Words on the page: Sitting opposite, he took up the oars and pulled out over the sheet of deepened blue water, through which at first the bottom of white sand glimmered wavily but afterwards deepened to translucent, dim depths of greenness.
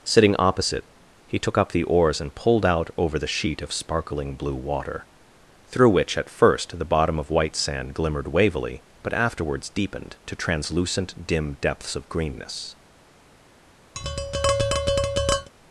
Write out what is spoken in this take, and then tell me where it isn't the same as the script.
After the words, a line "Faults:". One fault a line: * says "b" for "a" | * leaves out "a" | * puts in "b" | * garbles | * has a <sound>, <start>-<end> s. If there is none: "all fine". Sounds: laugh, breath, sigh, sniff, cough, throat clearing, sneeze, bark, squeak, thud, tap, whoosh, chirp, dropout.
Sitting opposite, he took up the oars and pulled out over the sheet of sparkling blue water, through which at first the bottom of white sand glimmered wavily but afterwards deepened to translucent, dim depths of greenness.
Faults:
* says "sparkling" for "deepened"
* has a tap, 13.9-15.5 s